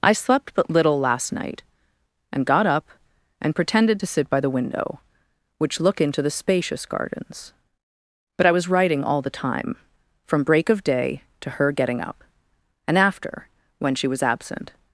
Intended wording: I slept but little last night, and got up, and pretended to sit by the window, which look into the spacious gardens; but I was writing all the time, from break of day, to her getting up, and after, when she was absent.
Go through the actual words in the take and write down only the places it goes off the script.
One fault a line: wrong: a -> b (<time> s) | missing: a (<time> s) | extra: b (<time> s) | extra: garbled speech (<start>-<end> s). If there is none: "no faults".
no faults